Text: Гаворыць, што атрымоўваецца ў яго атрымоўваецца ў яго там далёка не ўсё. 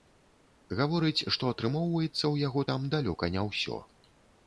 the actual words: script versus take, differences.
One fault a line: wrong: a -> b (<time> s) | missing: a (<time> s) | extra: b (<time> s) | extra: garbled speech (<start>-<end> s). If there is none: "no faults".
missing: атрымоўваецца ў яго (2.7 s)